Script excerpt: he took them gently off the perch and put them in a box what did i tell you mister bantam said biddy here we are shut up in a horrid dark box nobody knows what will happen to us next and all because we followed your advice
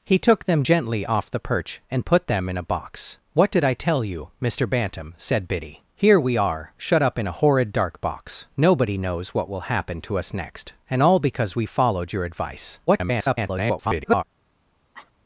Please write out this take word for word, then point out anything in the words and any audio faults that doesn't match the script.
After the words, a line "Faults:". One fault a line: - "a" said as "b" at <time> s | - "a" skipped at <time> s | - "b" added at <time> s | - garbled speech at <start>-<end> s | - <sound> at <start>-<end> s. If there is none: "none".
he took them gently off the perch and put them in a box what did i tell you mister bantam said biddy here we are shut up in a horrid dark box nobody knows what will happen to us next and all because we followed your advice [garbled]
Faults:
- garbled speech at 12.9-14.2 s
- cough at 14.9-15.1 s